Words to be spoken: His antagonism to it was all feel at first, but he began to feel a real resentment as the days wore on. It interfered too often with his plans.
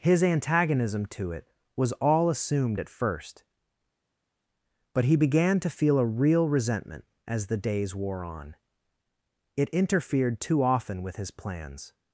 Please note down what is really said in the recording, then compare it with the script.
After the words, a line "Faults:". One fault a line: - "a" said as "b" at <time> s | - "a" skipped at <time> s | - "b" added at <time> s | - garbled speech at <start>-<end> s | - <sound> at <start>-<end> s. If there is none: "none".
His antagonism to it was all assumed at first, but he began to feel a real resentment as the days wore on. It interfered too often with his plans.
Faults:
- "feel" said as "assumed" at 2.3 s